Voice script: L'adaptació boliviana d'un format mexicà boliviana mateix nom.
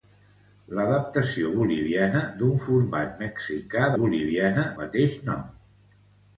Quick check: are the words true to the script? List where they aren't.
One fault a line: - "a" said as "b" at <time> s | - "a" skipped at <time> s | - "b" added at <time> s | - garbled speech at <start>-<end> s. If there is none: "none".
none